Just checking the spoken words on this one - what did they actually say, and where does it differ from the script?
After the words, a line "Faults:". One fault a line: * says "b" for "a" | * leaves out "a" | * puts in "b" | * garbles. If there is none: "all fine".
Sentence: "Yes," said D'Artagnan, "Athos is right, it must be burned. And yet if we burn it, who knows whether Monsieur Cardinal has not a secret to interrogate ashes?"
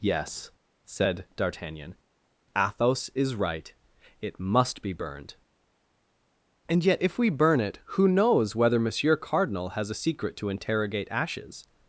"Yes," said D'Artagnan, "Athos is right, it must be burned. And yet if we burn it, who knows whether Monsieur Cardinal has a secret to interrogate ashes?"
Faults:
* leaves out "not"